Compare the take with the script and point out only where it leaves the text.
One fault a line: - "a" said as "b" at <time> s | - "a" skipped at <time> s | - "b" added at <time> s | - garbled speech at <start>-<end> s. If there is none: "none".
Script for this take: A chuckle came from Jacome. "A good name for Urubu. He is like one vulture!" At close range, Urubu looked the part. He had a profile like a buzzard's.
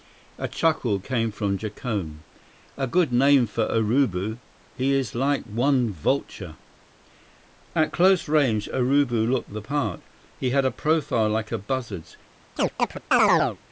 none